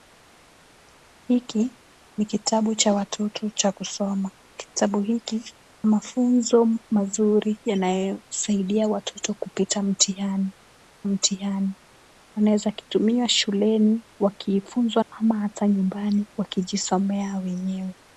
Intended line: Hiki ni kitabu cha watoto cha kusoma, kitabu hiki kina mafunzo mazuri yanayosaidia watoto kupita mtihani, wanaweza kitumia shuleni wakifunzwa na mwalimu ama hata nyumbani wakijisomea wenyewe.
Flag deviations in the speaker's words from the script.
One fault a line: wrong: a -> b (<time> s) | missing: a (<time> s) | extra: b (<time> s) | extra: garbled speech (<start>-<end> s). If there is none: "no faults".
missing: kina (5.5 s)
extra: mtihani (11.1 s)
missing: na mwalimu (15.0 s)